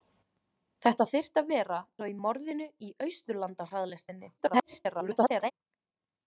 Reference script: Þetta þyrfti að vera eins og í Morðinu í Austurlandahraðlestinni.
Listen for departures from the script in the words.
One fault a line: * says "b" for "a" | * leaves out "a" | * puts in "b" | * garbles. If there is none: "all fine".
* leaves out "eins"
* garbles